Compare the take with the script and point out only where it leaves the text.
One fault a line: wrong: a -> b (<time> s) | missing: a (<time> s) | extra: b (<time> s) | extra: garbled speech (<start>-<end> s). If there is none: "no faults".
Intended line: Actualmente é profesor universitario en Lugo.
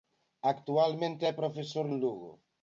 missing: universitario (1.8 s)